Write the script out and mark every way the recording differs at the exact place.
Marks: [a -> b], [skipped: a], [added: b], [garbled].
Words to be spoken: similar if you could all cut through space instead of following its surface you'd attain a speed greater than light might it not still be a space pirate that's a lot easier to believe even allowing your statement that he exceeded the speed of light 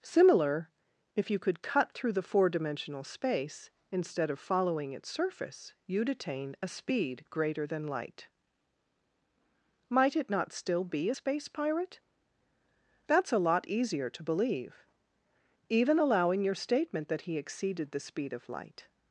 similar if you could [skipped: all] cut through [added: the four dimensional] space instead of following its surface you'd attain a speed greater than light might it not still be a space pirate that's a lot easier to believe even allowing your statement that he exceeded the speed of light